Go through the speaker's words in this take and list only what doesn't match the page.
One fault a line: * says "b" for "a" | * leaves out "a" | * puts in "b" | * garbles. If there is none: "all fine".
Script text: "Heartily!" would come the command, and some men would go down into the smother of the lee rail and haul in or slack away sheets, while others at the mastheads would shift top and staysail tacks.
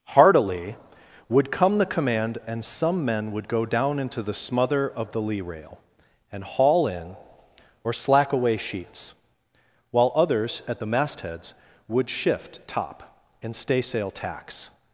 all fine